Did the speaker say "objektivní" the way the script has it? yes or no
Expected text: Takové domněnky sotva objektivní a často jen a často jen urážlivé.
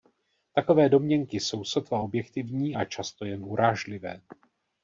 yes